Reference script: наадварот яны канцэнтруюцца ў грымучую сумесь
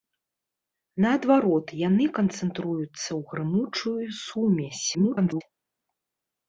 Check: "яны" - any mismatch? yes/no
no